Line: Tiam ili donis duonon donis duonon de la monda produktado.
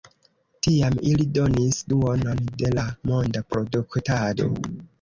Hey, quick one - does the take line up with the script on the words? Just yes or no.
no